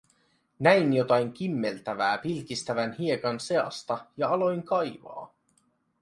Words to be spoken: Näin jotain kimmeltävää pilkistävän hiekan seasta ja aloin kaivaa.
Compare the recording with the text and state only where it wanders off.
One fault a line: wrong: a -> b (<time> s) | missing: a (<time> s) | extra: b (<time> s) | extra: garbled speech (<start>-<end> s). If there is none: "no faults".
no faults